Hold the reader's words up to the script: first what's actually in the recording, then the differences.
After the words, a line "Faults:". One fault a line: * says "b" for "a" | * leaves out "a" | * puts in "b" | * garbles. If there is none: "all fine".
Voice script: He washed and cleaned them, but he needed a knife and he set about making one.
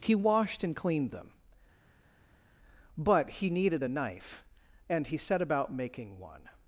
He washed and cleaned them, but he needed a knife and he set about making one.
Faults:
all fine